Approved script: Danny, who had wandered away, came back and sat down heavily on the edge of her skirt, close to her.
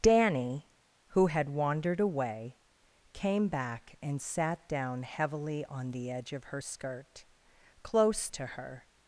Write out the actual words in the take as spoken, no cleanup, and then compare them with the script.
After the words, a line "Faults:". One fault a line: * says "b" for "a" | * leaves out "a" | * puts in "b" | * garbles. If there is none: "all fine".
Danny, who had wandered away, came back and sat down heavily on the edge of her skirt, close to her.
Faults:
all fine